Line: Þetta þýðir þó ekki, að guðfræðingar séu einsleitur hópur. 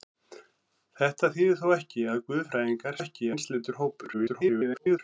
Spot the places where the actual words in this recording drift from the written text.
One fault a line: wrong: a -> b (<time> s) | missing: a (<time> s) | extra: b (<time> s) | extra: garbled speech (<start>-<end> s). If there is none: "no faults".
wrong: séu -> ekki (3.0 s)
extra: garbled speech (4.1-5.0 s)